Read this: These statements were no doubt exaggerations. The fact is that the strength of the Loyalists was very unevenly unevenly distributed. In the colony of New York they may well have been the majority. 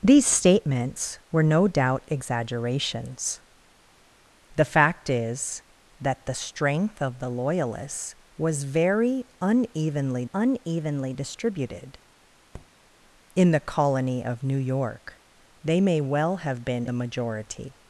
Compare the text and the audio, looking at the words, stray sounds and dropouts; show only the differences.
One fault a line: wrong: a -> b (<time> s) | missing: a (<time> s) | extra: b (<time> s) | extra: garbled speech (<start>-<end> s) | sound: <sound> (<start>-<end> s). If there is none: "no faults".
sound: tap (12.5-12.7 s)